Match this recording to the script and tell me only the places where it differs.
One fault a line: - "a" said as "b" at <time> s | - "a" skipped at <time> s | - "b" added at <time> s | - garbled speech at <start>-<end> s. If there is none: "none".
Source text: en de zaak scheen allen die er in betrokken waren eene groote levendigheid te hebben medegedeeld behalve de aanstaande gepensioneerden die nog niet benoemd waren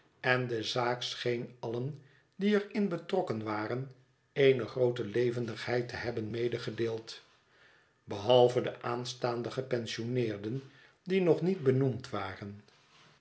none